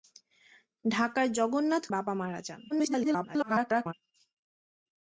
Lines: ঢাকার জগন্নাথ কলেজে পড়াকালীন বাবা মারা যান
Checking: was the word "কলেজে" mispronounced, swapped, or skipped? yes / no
yes